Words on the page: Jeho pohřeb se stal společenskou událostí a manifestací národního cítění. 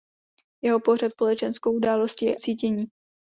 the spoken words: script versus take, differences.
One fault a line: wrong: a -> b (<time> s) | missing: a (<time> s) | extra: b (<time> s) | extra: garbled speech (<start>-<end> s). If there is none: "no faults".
missing: se stal (1.1 s)
missing: a manifestací národního (2.4 s)